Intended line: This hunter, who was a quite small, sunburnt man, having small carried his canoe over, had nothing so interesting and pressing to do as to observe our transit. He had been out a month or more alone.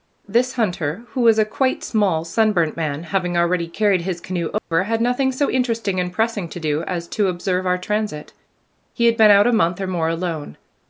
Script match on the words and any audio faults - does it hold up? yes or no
no